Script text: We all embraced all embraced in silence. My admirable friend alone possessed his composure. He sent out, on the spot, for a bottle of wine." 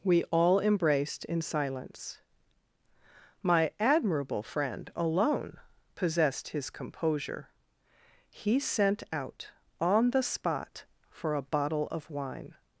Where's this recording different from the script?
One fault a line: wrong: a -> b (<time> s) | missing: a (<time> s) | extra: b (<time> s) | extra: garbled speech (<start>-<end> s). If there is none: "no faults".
missing: all embraced (1.2 s)